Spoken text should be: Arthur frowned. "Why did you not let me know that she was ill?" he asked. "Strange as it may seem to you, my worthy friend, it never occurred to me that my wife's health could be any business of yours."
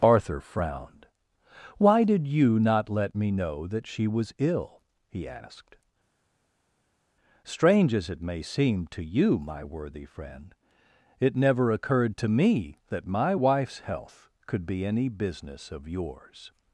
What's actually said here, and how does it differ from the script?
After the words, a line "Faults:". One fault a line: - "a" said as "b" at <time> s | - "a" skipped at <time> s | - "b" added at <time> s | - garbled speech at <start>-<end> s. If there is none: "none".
Arthur frowned. "Why did you not let me know that she was ill?" he asked. "Strange as it may seem to you, my worthy friend, it never occurred to me that my wife's health could be any business of yours."
Faults:
none